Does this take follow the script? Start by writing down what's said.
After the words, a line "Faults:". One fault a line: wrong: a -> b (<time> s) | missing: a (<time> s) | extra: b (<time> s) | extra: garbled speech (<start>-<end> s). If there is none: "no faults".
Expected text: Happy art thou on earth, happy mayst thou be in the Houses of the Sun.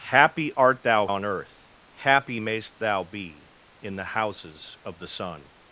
Happy art thou on earth, happy mayst thou be in the Houses of the Sun.
Faults:
no faults